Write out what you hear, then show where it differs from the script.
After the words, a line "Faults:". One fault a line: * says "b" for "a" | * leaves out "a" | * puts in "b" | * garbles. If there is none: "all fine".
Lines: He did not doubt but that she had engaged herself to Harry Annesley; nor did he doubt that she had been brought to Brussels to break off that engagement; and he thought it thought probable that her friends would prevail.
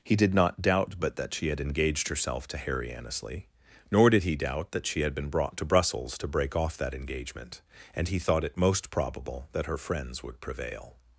He did not doubt but that she had engaged herself to Harry Annesley; nor did he doubt that she had been brought to Brussels to break off that engagement; and he thought it most probable that her friends would prevail.
Faults:
* says "most" for "thought"